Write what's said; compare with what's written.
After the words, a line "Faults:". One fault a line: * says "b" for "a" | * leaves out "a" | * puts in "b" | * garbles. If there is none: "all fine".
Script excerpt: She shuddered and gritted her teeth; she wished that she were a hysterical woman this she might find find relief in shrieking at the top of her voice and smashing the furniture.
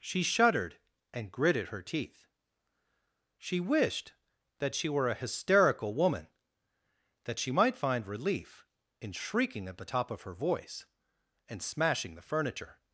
She shuddered and gritted her teeth; she wished that she were a hysterical woman that she might find relief in shrieking at the top of her voice and smashing the furniture.
Faults:
* says "that" for "this"
* leaves out "find"